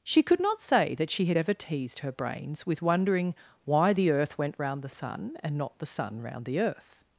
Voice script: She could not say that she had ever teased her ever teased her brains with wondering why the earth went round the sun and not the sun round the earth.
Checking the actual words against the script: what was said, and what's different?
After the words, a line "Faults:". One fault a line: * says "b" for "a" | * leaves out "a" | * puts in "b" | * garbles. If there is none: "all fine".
She could not say that she had ever teased her brains with wondering why the earth went round the sun and not the sun round the earth.
Faults:
* leaves out "ever teased her"